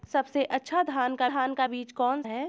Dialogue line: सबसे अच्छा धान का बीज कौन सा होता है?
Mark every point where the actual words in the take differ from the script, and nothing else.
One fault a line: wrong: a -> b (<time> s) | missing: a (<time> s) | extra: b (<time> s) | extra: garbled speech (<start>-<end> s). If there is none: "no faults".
extra: धान का (1.2 s)
missing: सा होता (2.2 s)